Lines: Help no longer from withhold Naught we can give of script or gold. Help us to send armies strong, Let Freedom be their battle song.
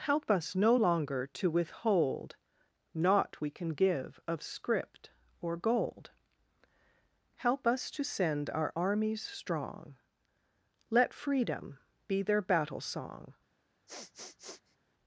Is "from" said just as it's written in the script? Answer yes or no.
no